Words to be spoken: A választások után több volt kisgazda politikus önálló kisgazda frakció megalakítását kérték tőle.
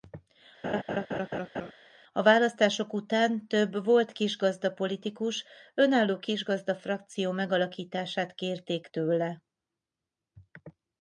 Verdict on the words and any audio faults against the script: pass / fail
fail